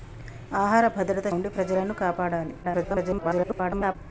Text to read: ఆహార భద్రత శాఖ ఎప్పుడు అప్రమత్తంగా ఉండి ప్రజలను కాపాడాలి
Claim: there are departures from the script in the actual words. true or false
true